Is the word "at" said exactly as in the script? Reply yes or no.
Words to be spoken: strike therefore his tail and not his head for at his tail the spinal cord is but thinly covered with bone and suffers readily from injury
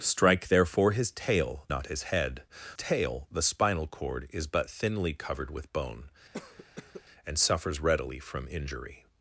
no